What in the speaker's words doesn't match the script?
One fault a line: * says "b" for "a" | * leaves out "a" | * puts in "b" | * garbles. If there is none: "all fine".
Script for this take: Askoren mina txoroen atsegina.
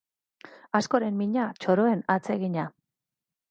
all fine